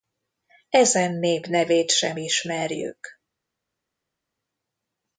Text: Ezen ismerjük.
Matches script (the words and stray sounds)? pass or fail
fail